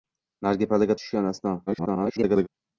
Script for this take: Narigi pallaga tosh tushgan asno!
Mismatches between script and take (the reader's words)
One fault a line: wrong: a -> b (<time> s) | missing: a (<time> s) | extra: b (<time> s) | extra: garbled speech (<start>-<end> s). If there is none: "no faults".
missing: tosh (1.0 s)
extra: garbled speech (1.7-2.5 s)